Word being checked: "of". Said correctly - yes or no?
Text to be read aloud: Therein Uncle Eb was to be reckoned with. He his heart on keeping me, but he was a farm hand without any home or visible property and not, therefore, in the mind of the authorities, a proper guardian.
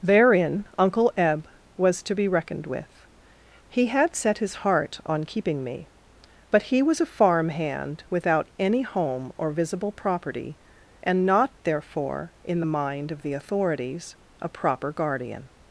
yes